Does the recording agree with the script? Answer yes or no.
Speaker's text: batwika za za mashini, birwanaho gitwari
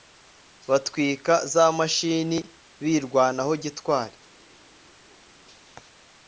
no